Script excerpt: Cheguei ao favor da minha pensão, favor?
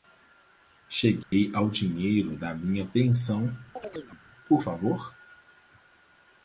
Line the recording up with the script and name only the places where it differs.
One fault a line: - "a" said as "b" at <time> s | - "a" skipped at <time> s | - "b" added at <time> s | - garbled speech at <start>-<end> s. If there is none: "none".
- "favor" said as "dinheiro" at 1.7 s
- "por" added at 4.5 s